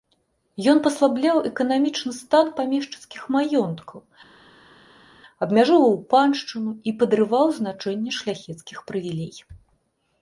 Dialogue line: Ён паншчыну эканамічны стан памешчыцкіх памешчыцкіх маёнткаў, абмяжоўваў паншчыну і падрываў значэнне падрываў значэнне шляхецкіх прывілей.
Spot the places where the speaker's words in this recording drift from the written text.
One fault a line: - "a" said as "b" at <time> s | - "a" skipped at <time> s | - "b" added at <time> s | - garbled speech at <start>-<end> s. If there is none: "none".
- "паншчыну" said as "паслабляў" at 0.8 s
- "памешчыцкіх" skipped at 3.2 s
- "падрываў значэнне" skipped at 8.1 s